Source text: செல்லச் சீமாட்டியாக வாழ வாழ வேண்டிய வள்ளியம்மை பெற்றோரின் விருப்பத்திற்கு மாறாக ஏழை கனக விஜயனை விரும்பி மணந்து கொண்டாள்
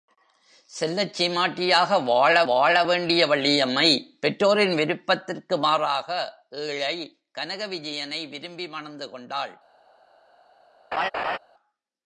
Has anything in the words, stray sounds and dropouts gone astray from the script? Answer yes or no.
yes